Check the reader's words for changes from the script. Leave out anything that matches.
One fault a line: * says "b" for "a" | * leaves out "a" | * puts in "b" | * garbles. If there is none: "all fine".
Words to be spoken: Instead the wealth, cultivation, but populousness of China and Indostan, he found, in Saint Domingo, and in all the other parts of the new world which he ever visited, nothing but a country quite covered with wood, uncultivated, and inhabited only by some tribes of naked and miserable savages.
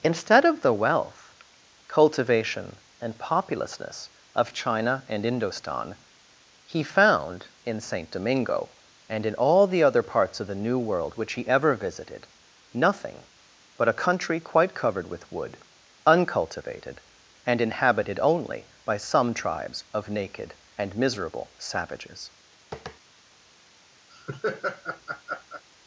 * puts in "of"
* says "and" for "but"